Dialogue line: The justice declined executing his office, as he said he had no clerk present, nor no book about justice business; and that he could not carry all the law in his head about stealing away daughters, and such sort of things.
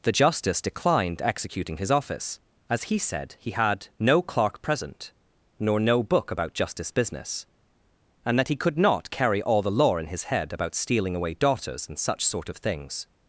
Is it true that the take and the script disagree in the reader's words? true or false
false